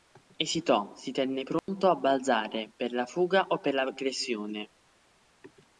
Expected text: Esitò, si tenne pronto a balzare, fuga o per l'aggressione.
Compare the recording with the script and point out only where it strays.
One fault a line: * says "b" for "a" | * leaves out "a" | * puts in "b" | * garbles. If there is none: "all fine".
* puts in "per la"